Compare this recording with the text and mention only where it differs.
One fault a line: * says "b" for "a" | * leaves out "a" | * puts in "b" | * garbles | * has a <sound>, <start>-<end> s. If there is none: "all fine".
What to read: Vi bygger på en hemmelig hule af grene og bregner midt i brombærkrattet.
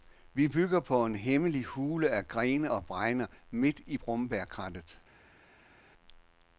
all fine